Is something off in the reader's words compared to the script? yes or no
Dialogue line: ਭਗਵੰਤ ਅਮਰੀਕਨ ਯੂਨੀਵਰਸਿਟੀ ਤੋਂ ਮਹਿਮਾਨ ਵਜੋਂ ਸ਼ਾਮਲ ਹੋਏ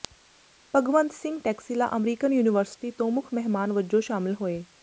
yes